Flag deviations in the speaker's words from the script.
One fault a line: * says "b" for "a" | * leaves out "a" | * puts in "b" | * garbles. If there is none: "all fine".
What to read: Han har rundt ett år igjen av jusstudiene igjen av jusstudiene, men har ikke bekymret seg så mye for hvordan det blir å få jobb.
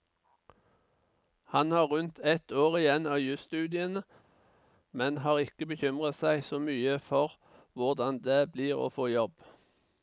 * leaves out "igjen av jusstudiene"